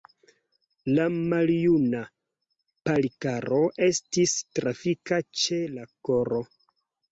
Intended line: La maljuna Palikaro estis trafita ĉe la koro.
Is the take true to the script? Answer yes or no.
yes